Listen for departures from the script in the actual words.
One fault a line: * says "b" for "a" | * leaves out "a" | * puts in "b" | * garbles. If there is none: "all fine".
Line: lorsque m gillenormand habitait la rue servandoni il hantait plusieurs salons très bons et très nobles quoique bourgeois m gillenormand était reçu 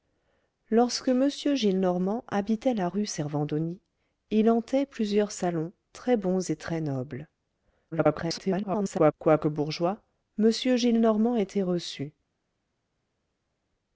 * garbles